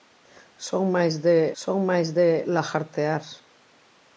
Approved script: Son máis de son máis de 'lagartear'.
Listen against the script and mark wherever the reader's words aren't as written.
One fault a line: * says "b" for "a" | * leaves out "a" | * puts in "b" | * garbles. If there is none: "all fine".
all fine